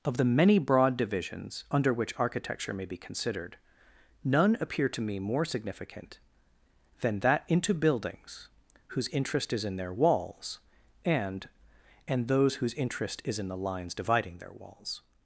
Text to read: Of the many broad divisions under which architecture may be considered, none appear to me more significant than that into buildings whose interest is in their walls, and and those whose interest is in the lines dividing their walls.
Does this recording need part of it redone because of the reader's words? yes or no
no